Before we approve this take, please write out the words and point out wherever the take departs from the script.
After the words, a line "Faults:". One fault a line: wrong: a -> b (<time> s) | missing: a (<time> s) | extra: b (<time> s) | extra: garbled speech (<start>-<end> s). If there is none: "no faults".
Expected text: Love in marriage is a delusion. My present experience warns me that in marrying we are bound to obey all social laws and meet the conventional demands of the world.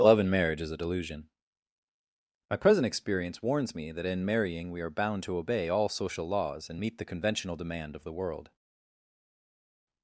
Love in marriage is a delusion. My present experience warns me that in marrying we are bound to obey all social laws and meet the conventional demand of the world.
Faults:
wrong: demands -> demand (7.6 s)